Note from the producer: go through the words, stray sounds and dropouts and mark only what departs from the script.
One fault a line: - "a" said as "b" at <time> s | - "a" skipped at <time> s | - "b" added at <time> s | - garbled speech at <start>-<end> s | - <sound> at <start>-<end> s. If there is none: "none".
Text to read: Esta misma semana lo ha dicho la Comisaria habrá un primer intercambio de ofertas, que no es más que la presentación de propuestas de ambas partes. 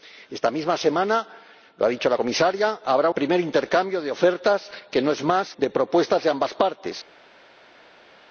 - "un" skipped at 3.1 s
- "que la presentación" skipped at 5.5 s